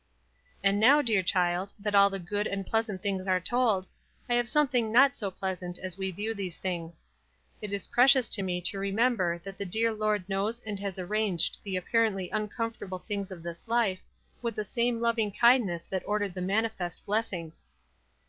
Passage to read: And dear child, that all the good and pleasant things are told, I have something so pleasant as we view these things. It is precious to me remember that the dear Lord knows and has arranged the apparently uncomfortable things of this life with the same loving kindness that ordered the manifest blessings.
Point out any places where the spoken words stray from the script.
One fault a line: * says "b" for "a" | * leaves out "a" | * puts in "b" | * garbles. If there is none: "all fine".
* puts in "now"
* puts in "not"
* puts in "to"